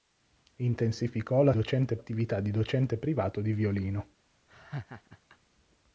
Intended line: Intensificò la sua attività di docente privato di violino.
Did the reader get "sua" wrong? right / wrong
wrong